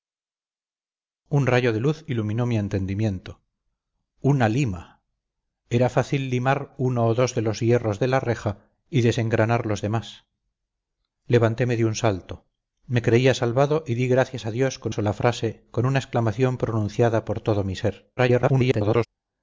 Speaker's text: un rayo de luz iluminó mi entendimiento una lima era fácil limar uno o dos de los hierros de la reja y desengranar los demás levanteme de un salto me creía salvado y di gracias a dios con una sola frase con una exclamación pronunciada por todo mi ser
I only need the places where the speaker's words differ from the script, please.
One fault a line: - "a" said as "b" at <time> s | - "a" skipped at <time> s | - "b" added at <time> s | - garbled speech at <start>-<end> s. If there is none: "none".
- "una" skipped at 14.9 s
- garbled speech at 18.2-19.1 s